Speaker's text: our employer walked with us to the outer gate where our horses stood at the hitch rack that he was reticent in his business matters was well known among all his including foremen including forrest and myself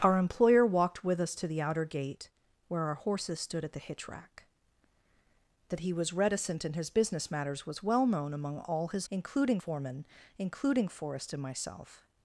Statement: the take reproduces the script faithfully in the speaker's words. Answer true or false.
true